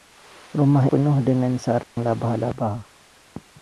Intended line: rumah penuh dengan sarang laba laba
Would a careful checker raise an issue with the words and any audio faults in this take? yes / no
yes